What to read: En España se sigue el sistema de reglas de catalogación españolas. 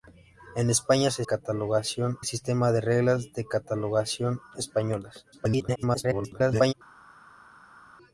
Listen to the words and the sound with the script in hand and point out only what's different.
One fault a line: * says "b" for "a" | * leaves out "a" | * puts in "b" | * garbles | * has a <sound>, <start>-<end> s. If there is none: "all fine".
* says "catalogación" for "sigue"
* garbles